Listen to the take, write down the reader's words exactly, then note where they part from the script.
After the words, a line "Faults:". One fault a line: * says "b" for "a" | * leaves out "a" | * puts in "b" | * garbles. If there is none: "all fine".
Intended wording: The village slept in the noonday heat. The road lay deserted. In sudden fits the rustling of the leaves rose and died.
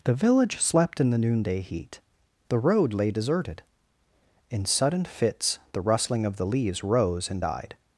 The village slept in the noonday heat. The road lay deserted. In sudden fits the rustling of the leaves rose and died.
Faults:
all fine